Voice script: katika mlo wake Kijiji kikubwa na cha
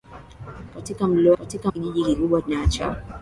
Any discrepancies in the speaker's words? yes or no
yes